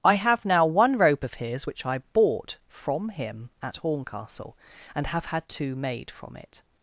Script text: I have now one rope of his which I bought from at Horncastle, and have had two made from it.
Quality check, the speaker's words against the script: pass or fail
fail